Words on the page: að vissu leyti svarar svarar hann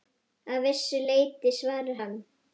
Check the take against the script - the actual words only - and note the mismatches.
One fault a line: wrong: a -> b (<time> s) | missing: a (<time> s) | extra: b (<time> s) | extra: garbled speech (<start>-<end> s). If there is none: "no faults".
missing: svarar (2.0 s)